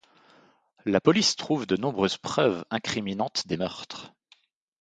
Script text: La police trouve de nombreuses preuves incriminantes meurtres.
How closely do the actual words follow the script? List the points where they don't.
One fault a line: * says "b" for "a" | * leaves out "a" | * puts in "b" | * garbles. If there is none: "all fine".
* puts in "des"